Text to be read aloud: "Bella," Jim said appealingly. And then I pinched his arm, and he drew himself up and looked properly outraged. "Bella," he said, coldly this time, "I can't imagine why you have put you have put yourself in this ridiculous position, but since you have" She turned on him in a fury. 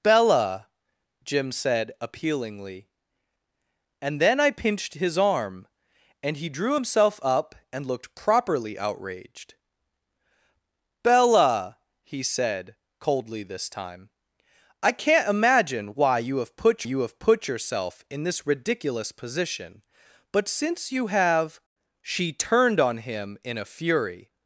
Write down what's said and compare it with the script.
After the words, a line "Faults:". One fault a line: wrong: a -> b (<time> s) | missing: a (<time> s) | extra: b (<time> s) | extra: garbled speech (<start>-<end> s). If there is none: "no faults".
"Bella," Jim said appealingly. And then I pinched his arm, and he drew himself up and looked properly outraged. "Bella," he said, coldly this time, "I can't imagine why you have put you have put yourself in this ridiculous position, but since you have" She turned on him in a fury.
Faults:
no faults